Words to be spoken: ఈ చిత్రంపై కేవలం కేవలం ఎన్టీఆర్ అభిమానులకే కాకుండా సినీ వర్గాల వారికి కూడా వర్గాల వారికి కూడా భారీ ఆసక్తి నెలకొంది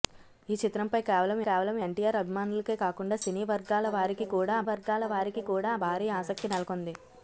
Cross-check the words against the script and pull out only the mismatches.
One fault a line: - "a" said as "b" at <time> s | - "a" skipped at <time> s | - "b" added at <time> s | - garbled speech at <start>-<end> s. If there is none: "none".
none